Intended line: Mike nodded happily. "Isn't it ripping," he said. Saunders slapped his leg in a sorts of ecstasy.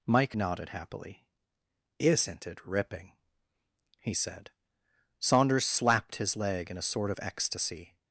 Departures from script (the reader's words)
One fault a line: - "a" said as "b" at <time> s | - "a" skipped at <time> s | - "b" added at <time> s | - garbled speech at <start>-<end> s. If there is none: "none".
- "sorts" said as "sort" at 6.8 s